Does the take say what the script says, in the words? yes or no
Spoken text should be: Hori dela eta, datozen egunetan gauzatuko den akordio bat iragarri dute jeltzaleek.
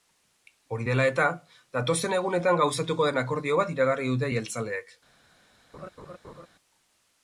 yes